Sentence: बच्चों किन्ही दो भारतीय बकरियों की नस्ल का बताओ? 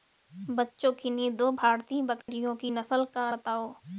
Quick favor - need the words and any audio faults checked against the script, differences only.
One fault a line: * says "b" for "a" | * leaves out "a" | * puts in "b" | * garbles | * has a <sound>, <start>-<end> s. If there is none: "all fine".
* has a dropout, 2.2-2.3 s